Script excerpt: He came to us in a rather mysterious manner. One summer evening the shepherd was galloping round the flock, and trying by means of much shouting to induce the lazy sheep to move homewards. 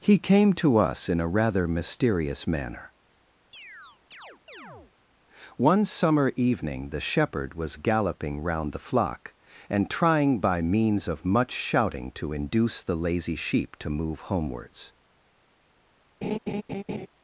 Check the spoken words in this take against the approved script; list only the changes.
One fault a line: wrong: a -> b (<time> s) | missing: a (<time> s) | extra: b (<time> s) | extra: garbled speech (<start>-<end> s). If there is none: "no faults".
no faults